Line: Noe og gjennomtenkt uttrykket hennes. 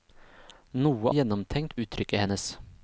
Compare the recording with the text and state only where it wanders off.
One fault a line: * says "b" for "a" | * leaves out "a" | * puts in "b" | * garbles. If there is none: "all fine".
all fine